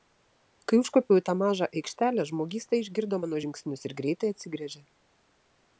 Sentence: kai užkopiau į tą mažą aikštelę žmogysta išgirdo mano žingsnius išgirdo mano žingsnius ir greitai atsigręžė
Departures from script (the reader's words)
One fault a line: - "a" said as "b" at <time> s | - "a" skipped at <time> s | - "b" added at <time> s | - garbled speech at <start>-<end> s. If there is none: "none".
- "išgirdo mano žingsnius" skipped at 3.9 s